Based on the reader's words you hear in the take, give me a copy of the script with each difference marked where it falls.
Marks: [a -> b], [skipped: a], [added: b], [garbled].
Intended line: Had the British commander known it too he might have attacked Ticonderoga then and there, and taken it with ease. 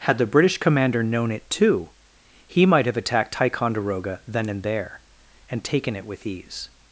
Had the British commander known it too he might have attacked Ticonderoga then and there, and taken it with ease.